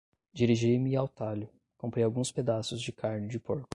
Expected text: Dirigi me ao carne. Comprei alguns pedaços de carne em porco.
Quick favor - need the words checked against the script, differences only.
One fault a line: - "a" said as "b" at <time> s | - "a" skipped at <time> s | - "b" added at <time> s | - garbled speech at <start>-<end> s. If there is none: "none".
- "carne" said as "talho" at 1.1 s
- "em" said as "de" at 3.3 s